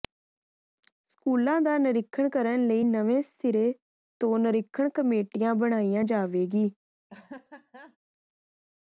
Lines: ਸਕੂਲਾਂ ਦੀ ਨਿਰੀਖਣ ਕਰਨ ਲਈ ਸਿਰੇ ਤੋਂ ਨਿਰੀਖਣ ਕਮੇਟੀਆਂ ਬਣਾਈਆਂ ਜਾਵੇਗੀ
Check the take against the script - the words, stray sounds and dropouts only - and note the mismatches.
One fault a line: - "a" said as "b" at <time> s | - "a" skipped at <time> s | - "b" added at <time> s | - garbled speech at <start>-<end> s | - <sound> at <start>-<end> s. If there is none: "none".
- "ਦੀ" said as "ਦਾ" at 1.6 s
- "ਨਵੇਂ" added at 2.8 s
- laugh at 7.1-8.0 s